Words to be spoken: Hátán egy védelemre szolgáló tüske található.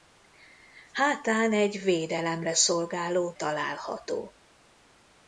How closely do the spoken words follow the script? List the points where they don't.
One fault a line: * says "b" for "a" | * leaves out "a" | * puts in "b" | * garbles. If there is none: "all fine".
* leaves out "tüske"